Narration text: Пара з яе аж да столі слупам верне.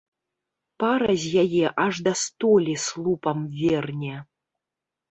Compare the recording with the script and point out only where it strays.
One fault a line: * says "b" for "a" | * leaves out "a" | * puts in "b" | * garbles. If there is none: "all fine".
all fine